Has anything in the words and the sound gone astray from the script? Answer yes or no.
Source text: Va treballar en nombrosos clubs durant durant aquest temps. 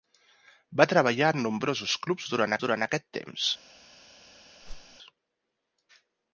yes